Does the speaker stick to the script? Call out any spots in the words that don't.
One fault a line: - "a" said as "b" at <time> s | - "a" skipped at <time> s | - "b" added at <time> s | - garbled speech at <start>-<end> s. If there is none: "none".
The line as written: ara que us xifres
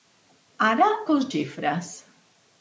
none